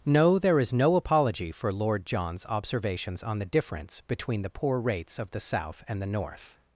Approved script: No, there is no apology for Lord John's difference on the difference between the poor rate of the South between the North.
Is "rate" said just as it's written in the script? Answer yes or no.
no